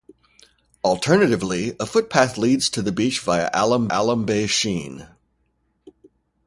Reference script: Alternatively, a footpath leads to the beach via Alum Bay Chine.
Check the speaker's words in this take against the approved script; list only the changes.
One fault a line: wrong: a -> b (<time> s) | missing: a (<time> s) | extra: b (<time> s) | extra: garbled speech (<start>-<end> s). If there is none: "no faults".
extra: Alum (3.9 s)